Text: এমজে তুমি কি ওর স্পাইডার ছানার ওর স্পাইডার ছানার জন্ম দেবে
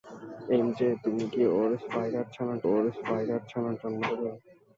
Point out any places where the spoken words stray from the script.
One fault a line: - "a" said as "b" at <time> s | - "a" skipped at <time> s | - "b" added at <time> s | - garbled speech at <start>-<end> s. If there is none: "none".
none